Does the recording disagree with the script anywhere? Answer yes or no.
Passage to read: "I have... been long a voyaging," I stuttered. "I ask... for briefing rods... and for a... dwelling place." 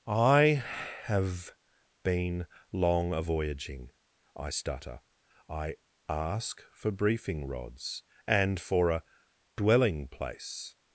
yes